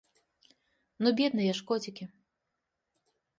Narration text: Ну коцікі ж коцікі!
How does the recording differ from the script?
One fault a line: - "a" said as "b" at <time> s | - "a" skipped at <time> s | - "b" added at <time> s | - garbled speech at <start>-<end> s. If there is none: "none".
- "коцікі" said as "бедныя" at 1.2 s